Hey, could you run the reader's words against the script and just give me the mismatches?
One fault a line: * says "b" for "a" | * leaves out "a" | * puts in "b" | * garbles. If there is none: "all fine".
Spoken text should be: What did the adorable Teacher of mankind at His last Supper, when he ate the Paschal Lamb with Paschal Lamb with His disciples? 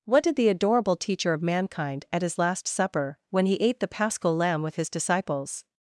* leaves out "Paschal Lamb with"